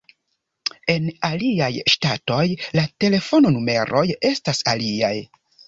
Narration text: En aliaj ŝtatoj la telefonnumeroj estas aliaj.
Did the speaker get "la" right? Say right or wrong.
right